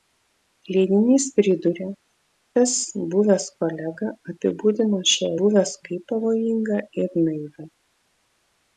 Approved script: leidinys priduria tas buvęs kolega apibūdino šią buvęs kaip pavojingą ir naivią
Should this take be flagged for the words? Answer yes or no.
no